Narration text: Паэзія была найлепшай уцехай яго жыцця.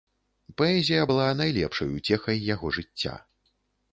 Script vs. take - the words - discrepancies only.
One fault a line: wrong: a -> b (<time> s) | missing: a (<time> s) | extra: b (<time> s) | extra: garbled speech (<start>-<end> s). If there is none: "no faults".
no faults